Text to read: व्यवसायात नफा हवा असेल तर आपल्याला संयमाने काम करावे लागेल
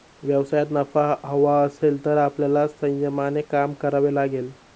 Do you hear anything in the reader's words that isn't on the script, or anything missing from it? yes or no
no